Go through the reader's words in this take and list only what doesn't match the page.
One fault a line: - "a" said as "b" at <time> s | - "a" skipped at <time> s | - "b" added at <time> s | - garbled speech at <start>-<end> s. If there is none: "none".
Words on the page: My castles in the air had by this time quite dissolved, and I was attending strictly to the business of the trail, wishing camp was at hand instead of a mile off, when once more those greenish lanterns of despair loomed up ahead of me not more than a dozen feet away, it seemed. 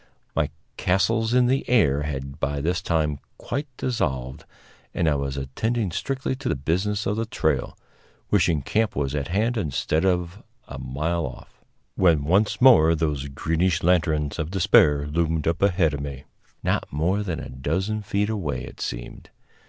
none